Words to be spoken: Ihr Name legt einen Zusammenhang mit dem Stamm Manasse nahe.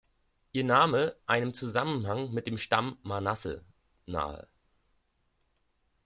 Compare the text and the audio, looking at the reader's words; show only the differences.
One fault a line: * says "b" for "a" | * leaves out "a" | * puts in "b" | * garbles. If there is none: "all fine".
* leaves out "legt"